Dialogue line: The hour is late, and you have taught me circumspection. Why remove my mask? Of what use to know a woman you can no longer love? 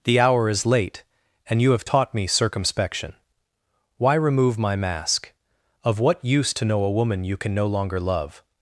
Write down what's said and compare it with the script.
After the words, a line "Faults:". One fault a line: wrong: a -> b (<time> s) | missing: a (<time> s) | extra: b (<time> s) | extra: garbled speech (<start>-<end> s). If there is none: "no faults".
The hour is late, and you have taught me circumspection. Why remove my mask? Of what use to know a woman you can no longer love?
Faults:
no faults